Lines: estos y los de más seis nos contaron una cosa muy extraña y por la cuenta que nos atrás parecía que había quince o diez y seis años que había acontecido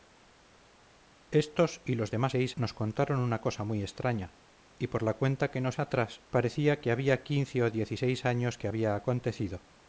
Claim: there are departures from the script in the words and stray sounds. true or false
false